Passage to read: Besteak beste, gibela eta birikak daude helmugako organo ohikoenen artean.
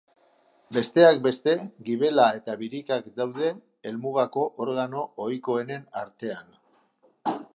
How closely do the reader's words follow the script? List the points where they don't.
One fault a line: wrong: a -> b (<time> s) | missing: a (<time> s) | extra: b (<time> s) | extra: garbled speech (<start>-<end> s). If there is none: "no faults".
no faults